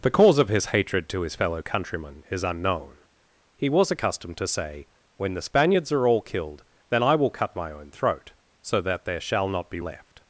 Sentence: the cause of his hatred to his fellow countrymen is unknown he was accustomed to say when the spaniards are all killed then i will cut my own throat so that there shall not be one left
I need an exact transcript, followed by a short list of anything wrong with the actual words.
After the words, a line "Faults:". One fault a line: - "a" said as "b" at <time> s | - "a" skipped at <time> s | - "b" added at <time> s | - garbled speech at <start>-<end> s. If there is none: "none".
the cause of his hatred to his fellow countrymen is unknown he was accustomed to say when the spaniards are all killed then i will cut my own throat so that there shall not be left
Faults:
- "one" skipped at 9.8 s